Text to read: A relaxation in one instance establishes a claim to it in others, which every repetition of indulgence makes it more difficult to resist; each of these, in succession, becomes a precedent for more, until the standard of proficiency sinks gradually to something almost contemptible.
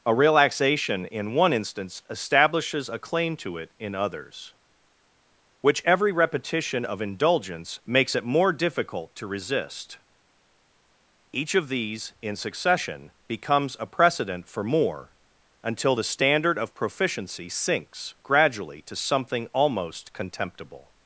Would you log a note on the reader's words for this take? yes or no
no